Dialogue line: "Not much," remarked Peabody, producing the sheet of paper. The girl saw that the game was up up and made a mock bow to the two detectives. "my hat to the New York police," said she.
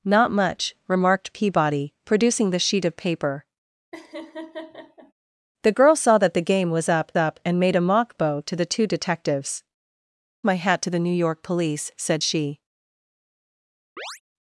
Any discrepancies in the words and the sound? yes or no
yes